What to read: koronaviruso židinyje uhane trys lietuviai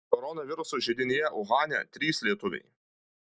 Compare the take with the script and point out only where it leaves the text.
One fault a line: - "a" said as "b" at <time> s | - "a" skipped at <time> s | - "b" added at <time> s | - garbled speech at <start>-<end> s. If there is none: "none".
none